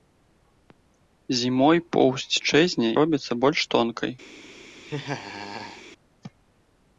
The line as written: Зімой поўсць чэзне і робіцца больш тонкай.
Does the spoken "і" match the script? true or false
false